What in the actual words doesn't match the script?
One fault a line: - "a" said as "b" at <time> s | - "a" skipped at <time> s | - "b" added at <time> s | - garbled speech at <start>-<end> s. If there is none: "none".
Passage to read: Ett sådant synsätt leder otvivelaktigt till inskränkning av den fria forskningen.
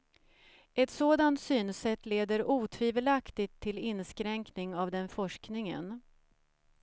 - "fria" skipped at 5.1 s